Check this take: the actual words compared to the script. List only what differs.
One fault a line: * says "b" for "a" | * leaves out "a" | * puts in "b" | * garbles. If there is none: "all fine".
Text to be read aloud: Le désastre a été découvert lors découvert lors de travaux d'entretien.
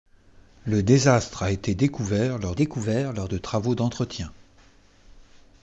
all fine